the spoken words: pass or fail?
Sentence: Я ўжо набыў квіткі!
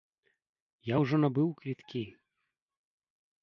pass